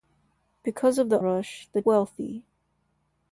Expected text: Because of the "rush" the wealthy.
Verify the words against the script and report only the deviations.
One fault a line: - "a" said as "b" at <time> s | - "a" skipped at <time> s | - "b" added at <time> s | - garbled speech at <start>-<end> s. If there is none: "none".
none